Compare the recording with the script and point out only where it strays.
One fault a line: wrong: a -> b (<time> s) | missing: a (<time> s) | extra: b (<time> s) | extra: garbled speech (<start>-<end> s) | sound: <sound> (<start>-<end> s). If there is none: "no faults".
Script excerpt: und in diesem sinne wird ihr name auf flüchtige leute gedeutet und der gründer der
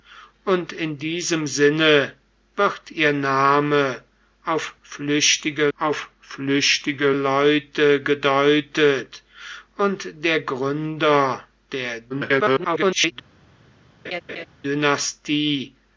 extra: auf flüchtige (5.8 s)
extra: garbled speech (12.1-13.1 s)
sound: laugh (14.0-14.5 s)